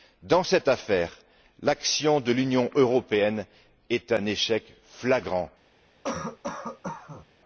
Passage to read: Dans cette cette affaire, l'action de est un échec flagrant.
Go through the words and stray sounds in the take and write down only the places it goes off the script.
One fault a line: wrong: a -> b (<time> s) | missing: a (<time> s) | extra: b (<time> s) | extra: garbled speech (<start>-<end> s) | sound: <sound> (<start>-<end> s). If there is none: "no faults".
missing: cette (0.7 s)
extra: l'Union européenne (2.3 s)
sound: cough (6.0-7.3 s)